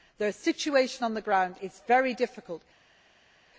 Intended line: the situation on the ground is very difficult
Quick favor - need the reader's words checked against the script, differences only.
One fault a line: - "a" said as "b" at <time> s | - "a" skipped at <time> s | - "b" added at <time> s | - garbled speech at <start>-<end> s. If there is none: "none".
none